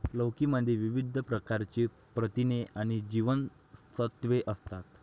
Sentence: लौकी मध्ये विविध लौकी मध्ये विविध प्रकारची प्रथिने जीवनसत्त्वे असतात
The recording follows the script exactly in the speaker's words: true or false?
false